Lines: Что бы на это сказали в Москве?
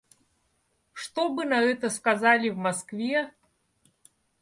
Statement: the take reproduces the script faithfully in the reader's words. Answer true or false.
true